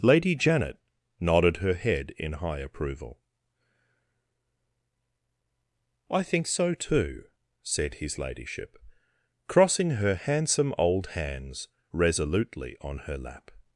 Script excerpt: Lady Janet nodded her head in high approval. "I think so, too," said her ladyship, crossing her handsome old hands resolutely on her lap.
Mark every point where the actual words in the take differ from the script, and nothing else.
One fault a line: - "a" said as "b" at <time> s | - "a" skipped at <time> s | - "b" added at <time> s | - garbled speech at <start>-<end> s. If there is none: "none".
- "her" said as "his" at 8.0 s